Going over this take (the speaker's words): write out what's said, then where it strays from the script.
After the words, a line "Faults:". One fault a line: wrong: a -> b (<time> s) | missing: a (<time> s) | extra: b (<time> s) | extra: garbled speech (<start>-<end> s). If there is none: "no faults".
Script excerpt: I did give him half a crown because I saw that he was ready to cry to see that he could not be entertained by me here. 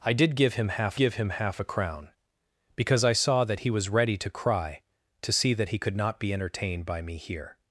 I did give him half give him half a crown because I saw that he was ready to cry to see that he could not be entertained by me here.
Faults:
extra: give him half (1.0 s)